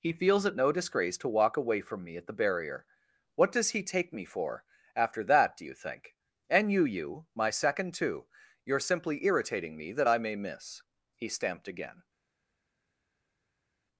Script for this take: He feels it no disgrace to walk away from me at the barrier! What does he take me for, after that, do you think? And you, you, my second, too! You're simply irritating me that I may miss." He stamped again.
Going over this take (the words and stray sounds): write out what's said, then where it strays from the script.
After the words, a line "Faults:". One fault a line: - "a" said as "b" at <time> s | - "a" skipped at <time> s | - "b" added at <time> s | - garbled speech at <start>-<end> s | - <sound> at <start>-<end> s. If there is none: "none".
He feels it no disgrace to walk away from me at the barrier! What does he take me for, after that, do you think? And you, you, my second, too! You're simply irritating me that I may miss." He stamped again.
Faults:
none